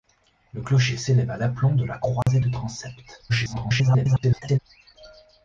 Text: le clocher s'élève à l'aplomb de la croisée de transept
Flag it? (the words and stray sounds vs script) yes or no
yes